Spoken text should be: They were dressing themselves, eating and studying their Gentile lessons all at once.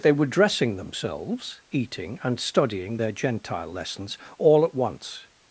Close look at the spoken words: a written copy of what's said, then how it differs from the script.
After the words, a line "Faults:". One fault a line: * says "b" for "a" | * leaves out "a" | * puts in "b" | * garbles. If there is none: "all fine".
They were dressing themselves, eating and studying their Gentile lessons all at once.
Faults:
all fine